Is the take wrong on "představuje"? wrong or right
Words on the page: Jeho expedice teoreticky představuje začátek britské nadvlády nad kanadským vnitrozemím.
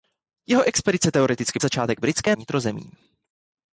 wrong